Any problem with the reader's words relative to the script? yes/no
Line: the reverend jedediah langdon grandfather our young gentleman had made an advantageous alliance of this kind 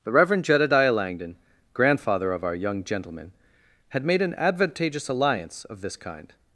yes